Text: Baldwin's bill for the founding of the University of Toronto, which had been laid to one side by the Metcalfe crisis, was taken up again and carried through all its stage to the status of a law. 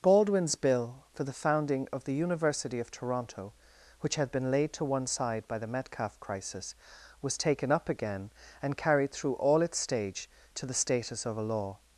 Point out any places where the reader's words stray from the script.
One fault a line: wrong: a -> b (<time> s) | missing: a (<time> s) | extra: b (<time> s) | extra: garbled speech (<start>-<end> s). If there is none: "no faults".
no faults